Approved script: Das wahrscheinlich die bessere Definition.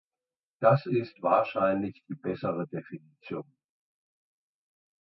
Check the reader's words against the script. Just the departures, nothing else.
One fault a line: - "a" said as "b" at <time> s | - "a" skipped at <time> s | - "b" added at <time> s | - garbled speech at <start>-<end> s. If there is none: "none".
- "ist" added at 0.9 s